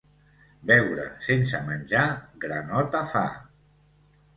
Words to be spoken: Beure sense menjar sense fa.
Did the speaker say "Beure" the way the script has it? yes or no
yes